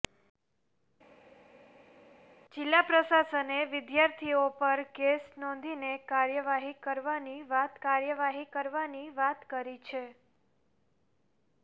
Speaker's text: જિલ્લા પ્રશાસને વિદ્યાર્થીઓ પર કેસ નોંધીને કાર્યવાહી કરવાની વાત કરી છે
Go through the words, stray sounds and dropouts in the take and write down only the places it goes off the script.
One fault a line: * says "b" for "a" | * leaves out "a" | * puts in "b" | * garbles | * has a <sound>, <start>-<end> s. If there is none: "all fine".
* puts in "કાર્યવાહી કરવાની વાત"